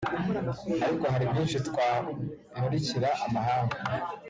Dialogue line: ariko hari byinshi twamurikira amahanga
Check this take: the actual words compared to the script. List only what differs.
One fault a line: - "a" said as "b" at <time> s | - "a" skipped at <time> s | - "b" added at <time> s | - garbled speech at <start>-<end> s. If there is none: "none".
none